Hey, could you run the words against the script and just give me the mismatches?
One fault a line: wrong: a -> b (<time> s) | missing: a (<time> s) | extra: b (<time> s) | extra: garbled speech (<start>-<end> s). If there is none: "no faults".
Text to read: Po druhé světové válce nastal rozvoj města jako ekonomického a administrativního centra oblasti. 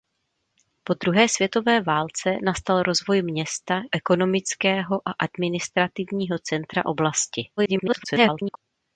missing: jako (3.8 s)
extra: garbled speech (7.6-8.6 s)